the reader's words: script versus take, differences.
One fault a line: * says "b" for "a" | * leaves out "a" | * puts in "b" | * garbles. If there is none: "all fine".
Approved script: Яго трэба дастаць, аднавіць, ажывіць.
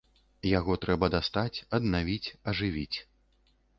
all fine